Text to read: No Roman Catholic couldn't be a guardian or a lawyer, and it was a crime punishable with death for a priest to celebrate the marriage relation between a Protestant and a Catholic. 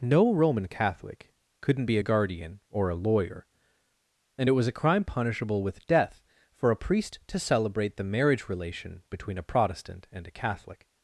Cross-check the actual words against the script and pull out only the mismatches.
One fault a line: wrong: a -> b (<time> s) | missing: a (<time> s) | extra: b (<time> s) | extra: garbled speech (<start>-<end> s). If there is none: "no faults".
no faults